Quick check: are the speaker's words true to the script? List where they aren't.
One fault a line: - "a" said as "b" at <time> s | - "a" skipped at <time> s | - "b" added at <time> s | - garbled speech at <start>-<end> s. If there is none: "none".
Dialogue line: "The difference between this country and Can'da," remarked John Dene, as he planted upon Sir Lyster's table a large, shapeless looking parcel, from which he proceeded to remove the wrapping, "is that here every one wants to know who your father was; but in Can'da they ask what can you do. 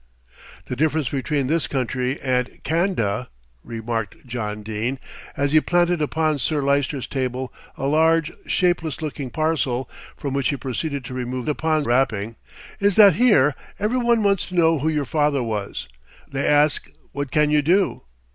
- "the" said as "upon" at 11.5 s
- "but in Can'da" skipped at 15.9 s